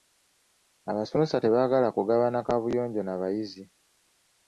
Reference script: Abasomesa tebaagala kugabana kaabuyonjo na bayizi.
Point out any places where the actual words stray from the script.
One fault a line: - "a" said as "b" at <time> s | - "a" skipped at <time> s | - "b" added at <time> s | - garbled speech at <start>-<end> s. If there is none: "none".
none